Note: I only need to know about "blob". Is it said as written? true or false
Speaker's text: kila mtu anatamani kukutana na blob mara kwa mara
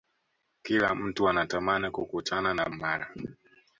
false